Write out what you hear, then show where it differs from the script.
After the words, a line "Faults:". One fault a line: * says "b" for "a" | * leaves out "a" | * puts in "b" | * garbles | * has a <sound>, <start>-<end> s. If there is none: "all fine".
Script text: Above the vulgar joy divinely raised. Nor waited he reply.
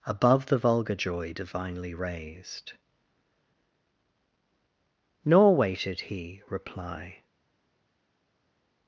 Above the vulgar joy divinely raised. Nor waited he reply.
Faults:
all fine